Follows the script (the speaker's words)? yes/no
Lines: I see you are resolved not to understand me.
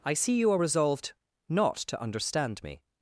yes